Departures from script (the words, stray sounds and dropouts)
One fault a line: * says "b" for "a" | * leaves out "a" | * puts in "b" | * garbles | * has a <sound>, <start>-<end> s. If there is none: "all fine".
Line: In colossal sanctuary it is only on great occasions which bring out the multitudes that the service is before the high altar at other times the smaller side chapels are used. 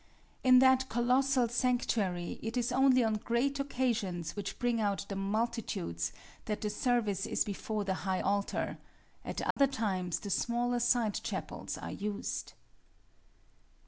* puts in "that"
* has a dropout, 9.5-9.6 s